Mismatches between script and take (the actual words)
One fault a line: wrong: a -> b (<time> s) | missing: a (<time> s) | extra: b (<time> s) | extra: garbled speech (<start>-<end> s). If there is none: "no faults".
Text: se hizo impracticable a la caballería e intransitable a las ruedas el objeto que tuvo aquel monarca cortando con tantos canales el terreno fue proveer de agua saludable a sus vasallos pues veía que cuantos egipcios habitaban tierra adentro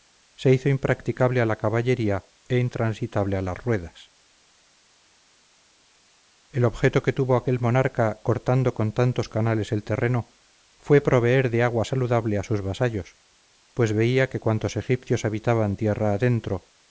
no faults